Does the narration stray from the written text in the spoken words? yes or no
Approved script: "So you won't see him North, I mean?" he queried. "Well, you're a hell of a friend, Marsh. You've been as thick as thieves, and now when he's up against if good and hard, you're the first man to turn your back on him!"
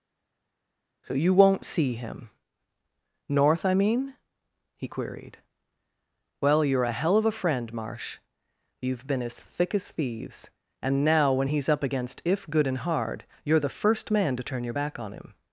no